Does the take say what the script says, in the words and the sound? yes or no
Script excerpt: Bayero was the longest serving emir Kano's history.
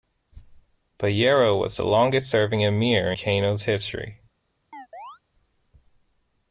no